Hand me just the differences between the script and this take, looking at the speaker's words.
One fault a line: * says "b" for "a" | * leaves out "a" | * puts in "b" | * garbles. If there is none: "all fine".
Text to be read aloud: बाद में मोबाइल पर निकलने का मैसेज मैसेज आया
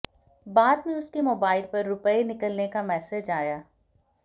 * puts in "उसके"
* puts in "रुपए"
* leaves out "मैसेज"